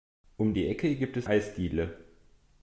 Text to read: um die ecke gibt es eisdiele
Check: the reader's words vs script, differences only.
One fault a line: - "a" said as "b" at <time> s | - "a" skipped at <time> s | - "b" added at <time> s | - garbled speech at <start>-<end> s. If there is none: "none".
none